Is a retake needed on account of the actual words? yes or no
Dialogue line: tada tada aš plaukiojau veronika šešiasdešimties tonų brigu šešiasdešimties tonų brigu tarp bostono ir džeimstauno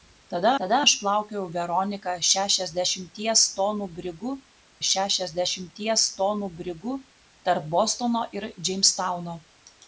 no